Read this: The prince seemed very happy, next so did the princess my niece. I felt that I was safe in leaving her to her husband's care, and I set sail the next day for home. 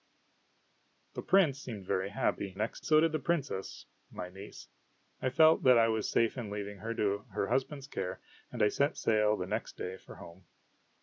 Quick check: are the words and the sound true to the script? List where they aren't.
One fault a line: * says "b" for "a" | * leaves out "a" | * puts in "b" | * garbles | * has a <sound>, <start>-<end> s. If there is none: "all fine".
all fine